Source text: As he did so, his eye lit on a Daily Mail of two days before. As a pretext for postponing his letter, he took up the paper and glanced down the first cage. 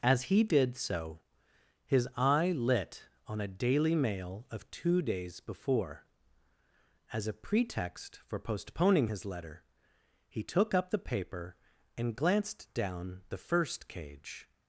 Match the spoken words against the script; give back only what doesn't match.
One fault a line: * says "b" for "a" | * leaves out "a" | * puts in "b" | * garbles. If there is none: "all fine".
all fine